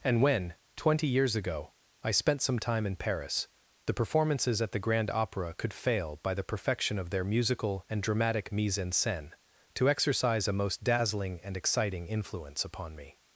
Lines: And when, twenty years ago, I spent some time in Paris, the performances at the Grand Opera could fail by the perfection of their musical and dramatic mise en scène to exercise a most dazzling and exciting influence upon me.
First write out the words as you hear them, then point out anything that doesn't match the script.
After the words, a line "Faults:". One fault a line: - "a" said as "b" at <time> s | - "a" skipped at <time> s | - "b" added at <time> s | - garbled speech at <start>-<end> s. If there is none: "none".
And when, twenty years ago, I spent some time in Paris, the performances at the Grand Opera could fail by the perfection of their musical and dramatic mise en scène to exercise a most dazzling and exciting influence upon me.
Faults:
none